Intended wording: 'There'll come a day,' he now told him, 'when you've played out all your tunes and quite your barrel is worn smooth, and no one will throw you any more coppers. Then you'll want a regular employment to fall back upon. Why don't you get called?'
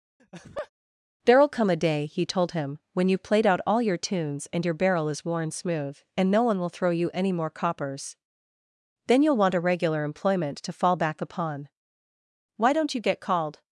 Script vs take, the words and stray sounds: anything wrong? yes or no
yes